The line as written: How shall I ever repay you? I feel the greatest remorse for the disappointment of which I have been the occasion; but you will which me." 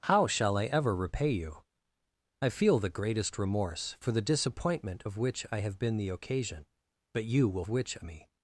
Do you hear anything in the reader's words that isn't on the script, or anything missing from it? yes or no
no